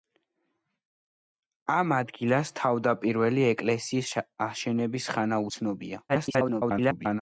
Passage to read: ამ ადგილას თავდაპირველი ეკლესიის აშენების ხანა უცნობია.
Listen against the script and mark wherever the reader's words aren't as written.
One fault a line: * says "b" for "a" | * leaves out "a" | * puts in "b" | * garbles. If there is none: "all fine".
* garbles